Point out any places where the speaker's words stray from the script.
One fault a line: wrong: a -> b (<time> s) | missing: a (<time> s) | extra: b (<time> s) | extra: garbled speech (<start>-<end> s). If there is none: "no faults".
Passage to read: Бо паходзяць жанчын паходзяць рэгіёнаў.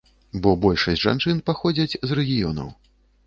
wrong: паходзяць -> большасць (0.6 s)
extra: з (2.1 s)